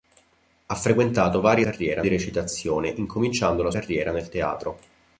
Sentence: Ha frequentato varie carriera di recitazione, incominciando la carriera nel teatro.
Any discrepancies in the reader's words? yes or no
no